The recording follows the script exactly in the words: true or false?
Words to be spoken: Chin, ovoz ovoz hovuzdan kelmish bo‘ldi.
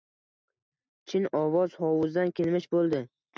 false